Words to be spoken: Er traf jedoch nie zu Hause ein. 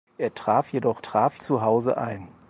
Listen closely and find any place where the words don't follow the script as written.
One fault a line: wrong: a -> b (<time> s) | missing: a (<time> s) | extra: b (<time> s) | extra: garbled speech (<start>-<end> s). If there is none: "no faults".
wrong: nie -> traf (1.0 s)